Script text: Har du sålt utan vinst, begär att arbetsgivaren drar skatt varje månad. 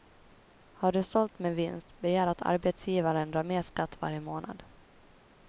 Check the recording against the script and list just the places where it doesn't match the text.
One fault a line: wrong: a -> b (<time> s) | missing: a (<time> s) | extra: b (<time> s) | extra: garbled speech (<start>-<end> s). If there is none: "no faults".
wrong: utan -> med (1.4 s)
extra: mer (3.4 s)